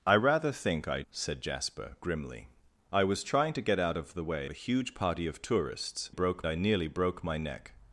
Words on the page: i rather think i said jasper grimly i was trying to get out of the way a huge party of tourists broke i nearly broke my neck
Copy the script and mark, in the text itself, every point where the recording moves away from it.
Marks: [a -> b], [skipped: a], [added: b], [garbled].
i rather think i said jasper grimly i was trying to get out of the way a huge party of tourists broke i nearly broke my neck